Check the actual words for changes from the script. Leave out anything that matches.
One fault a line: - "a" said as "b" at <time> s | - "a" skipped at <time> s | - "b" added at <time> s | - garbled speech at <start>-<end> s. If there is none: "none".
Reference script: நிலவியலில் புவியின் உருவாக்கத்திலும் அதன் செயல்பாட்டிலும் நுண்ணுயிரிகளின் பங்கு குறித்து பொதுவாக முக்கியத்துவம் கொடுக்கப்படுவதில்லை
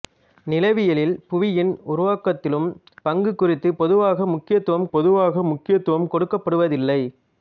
- "அதன் செயல்பாட்டிலும் நுண்ணுயிரிகளின் பங்கு குறித்து" said as "பங்கு குறித்து பொதுவாக முக்கியத்துவம்" at 3.0 s